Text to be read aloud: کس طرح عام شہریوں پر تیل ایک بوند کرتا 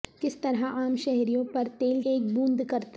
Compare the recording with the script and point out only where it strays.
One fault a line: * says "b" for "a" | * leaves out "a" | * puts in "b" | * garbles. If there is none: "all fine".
all fine